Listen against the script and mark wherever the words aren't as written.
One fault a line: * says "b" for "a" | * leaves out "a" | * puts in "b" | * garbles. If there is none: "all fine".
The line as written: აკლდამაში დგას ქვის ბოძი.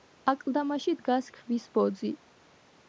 all fine